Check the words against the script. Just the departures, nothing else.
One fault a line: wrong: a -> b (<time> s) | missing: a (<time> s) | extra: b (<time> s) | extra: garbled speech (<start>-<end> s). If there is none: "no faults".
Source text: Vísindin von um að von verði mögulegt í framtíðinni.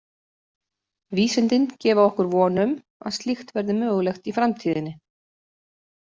extra: gefa okkur (1.8 s)
wrong: von -> slíkt (3.2 s)